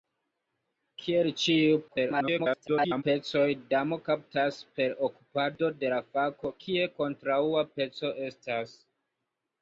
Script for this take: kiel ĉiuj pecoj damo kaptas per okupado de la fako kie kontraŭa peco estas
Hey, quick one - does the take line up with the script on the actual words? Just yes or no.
no